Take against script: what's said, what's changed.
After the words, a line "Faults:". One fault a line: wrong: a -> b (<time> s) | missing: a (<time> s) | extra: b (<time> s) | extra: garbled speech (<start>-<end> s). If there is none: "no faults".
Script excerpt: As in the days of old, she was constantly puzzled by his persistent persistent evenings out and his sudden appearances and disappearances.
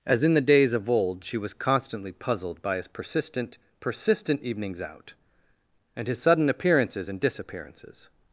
As in the days of old, she was constantly puzzled by his persistent persistent evenings out and his sudden appearances and disappearances.
Faults:
no faults